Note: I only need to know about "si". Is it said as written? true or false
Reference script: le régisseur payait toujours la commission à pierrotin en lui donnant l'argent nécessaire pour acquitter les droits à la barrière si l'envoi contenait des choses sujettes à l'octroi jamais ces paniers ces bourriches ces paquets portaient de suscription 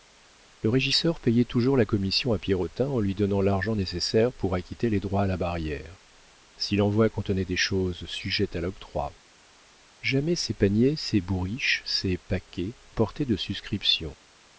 true